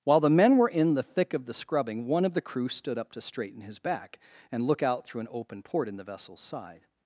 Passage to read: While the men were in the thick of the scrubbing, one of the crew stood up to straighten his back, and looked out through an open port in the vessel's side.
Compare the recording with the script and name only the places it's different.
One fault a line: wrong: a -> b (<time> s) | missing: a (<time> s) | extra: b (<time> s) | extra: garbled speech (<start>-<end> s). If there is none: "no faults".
wrong: looked -> look (4.6 s)